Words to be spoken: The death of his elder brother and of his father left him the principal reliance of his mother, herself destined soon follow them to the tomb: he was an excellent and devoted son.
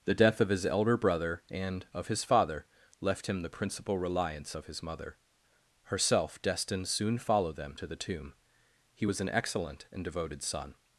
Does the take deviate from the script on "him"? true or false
false